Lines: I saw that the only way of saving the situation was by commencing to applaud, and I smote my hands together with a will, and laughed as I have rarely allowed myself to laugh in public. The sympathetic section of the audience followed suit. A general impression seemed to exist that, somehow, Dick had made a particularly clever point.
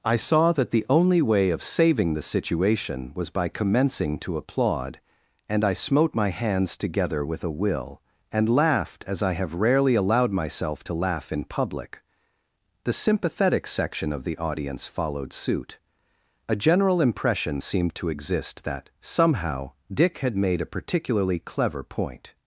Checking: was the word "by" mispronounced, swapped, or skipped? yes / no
no